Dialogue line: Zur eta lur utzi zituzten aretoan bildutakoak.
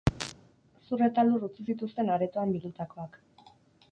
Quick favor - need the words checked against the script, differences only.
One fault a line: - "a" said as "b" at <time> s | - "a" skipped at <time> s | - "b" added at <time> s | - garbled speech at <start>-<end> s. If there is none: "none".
none